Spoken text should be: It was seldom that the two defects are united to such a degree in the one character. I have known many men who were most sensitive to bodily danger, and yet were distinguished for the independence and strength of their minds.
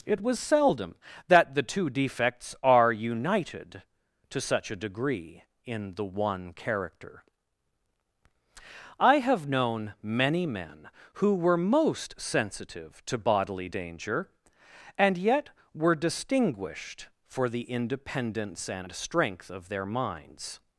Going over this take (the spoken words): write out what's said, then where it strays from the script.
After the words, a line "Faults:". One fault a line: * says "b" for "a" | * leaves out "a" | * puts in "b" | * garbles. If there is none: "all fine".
It was seldom that the two defects are united to such a degree in the one character. I have known many men who were most sensitive to bodily danger, and yet were distinguished for the independence and strength of their minds.
Faults:
all fine